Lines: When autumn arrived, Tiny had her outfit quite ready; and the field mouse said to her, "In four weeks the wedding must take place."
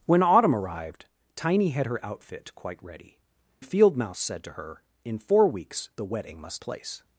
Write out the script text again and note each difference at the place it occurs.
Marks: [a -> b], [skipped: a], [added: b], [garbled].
When autumn arrived, Tiny had her outfit quite ready; [skipped: and] the field mouse said to her, "In four weeks the wedding must [skipped: take] place."